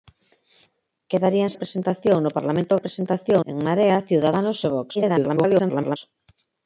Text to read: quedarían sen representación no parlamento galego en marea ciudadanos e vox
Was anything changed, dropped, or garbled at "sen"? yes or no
yes